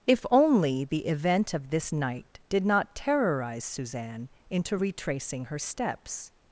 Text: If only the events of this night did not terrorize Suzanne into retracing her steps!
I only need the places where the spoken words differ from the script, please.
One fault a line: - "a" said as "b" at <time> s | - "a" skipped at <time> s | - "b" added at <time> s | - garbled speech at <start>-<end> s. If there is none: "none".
- "events" said as "event" at 1.1 s